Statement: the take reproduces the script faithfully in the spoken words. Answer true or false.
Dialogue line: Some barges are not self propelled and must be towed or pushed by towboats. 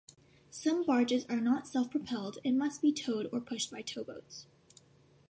true